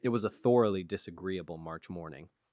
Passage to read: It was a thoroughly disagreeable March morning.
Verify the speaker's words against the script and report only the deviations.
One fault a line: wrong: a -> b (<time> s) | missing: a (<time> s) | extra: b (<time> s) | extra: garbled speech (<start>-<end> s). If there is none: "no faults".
no faults